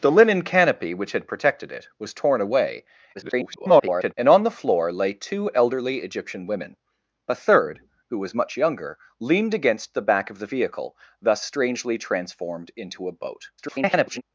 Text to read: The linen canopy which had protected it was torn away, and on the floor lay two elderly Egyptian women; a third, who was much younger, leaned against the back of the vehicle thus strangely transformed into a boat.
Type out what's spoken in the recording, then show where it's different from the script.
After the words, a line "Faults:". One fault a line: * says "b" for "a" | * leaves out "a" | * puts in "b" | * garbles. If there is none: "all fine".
The linen canopy which had protected it was torn away, [garbled] and on the floor lay two elderly Egyptian women; a third, who was much younger, leaned against the back of the vehicle thus strangely transformed into a boat. [garbled]
Faults:
* garbles
* garbles